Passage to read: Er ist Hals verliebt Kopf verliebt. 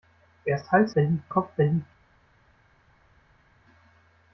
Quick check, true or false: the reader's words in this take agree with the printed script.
true